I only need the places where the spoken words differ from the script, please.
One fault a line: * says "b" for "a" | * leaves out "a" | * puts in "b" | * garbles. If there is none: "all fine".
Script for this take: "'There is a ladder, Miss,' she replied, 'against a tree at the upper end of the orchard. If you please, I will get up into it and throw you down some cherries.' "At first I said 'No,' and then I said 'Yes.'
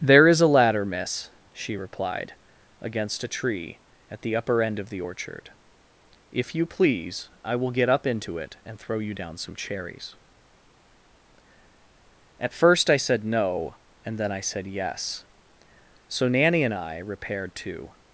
* puts in "So Nanny and I repaired to"